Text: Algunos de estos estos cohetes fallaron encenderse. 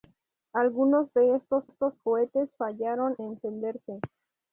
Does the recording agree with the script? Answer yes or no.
yes